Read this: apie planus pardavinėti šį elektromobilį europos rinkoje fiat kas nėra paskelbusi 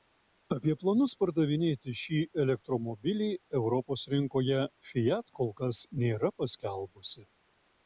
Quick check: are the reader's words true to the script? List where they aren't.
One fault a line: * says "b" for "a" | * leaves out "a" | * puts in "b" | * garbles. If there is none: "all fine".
* puts in "kol"